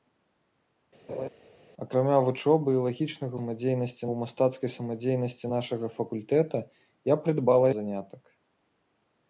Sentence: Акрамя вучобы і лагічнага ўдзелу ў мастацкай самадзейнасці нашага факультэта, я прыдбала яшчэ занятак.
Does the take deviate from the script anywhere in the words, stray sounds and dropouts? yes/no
yes